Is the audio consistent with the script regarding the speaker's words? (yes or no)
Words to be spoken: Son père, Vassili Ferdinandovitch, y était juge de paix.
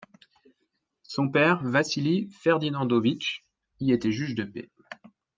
yes